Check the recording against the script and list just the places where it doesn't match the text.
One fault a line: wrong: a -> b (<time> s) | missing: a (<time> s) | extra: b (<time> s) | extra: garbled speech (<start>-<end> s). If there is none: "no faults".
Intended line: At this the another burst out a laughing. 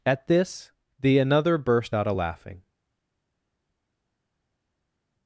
no faults